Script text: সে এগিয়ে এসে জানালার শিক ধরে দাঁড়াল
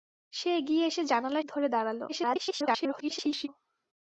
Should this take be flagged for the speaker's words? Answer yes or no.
yes